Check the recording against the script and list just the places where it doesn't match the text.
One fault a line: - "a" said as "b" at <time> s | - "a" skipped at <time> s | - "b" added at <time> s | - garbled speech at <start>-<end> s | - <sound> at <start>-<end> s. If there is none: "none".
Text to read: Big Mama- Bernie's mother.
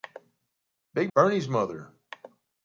- "Mama" skipped at 1.1 s